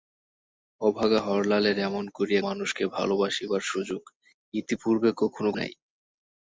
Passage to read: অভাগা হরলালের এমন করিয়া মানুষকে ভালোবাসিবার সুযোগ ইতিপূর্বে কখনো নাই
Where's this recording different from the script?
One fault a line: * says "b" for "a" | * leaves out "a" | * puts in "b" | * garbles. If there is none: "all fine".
all fine